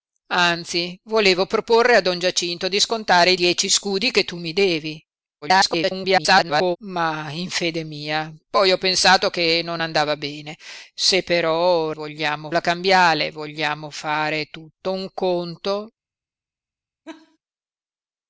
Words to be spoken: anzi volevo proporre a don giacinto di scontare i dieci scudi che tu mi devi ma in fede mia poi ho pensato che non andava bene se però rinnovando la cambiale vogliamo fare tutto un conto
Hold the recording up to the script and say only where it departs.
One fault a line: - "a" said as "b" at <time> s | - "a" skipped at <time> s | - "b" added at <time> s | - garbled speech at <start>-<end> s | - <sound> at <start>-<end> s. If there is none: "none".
- garbled speech at 5.4-6.8 s
- "rinnovando" said as "vogliamo" at 11.9 s
- laugh at 17.1-17.4 s